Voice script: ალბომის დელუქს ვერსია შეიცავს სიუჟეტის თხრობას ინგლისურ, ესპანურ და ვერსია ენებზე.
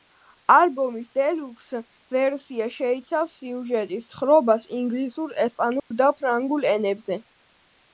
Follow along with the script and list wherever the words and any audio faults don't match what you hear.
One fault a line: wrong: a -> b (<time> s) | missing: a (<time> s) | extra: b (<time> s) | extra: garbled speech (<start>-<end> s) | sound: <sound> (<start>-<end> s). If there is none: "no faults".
sound: dropout (5.8-5.9 s)
wrong: ვერსია -> ფრანგულ (6.2 s)